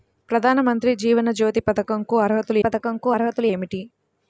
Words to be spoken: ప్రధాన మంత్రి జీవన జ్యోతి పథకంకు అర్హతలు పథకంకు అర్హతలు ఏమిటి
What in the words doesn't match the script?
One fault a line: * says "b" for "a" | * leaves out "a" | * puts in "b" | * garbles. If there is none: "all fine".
all fine